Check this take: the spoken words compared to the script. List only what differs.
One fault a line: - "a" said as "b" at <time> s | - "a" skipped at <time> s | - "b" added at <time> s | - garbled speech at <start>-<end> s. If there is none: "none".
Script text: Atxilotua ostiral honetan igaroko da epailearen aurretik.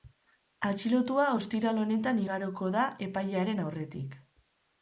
none